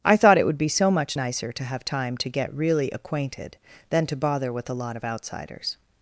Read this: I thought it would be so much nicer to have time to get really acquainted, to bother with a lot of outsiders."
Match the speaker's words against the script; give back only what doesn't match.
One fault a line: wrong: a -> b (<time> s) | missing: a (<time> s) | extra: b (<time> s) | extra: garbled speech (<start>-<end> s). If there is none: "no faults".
extra: than (3.9 s)